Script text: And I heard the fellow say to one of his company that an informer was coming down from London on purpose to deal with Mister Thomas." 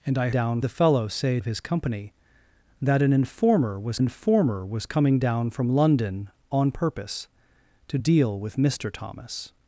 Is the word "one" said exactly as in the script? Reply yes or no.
no